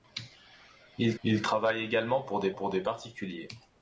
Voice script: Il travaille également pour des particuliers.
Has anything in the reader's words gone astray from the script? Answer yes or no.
yes